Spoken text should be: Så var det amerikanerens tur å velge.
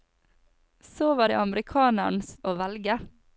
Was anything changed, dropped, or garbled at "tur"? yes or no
yes